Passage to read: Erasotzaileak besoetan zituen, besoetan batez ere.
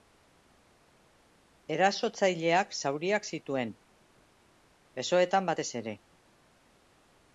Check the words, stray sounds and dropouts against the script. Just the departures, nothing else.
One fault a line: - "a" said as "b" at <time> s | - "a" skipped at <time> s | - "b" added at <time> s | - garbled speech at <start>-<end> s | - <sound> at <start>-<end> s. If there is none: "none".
- "besoetan" said as "zauriak" at 2.8 s